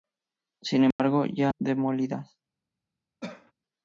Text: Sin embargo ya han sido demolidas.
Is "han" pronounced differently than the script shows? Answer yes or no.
yes